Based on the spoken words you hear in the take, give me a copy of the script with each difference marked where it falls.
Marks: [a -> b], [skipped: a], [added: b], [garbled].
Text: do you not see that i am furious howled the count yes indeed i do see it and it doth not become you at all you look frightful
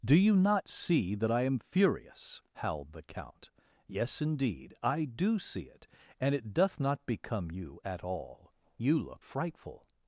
do you not see that i am furious howled the count yes indeed i do see it and it doth not become you at all you look frightful